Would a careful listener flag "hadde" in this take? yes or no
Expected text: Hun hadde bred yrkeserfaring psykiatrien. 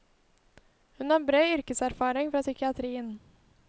yes